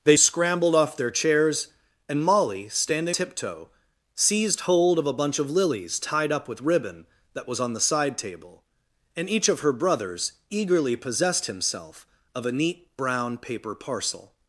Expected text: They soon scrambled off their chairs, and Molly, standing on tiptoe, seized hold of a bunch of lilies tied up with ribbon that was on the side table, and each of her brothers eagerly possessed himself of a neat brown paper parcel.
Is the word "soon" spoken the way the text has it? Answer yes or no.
no